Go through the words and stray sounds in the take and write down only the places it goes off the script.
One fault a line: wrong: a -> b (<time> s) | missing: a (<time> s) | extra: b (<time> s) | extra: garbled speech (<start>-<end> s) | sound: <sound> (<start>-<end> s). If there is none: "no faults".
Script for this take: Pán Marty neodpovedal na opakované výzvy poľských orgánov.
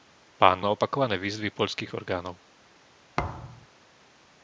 missing: Marty neodpovedal (0.7 s)
sound: thud (3.2-3.7 s)